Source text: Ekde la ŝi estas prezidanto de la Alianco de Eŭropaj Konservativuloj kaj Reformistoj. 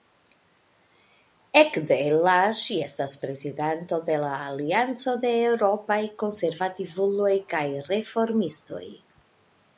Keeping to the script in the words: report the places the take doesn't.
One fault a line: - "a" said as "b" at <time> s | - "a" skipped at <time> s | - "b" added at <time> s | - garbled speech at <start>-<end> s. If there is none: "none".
none